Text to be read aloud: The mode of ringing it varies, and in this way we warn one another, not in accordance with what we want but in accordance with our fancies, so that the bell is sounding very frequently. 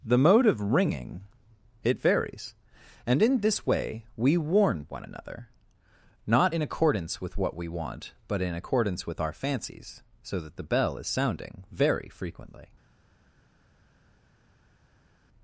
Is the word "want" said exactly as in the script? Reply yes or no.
yes